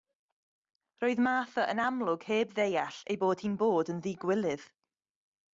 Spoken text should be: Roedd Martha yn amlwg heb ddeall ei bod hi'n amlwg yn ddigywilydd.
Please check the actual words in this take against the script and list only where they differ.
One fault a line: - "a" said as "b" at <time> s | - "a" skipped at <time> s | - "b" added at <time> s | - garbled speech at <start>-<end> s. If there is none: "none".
- "amlwg" said as "bod" at 3.6 s